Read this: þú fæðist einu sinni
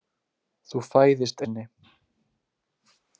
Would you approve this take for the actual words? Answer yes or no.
no